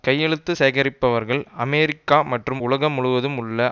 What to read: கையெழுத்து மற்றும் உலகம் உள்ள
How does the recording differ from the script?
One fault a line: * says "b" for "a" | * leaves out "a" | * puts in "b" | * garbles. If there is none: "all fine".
* puts in "சேகரிப்பவர்கள் அமெரிக்கா"
* puts in "முழுவதும்"